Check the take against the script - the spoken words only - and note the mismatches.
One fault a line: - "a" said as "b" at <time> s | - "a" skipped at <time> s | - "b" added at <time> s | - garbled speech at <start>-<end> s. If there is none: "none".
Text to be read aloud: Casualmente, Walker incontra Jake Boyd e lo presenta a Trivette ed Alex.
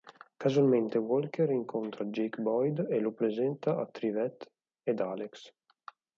none